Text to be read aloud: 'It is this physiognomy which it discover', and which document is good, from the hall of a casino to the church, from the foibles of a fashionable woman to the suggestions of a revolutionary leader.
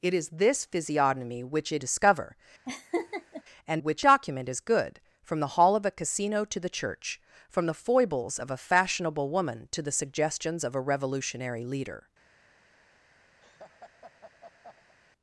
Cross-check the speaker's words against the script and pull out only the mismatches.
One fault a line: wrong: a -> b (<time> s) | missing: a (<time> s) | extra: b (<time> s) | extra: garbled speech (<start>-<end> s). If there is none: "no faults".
no faults